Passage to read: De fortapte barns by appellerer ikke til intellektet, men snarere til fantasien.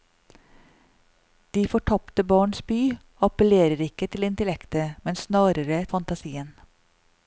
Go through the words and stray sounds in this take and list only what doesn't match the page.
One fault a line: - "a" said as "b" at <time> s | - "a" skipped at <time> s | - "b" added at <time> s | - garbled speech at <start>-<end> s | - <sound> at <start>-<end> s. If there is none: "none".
- "til" skipped at 5.8 s